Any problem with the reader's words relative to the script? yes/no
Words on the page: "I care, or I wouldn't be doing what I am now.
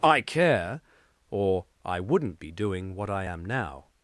no